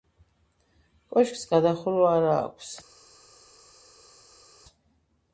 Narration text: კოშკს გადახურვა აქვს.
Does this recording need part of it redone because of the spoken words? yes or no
yes